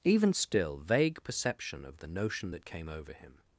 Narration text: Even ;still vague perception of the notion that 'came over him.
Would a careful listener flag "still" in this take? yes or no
no